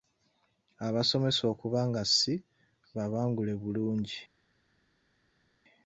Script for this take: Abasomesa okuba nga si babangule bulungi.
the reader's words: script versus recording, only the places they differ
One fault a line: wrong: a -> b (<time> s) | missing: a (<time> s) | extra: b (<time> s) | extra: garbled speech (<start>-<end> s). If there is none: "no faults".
no faults